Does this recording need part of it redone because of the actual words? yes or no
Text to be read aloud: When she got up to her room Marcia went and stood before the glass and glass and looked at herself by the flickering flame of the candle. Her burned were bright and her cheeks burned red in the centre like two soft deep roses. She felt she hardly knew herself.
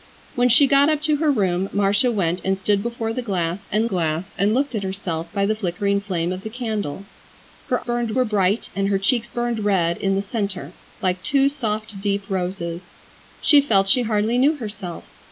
no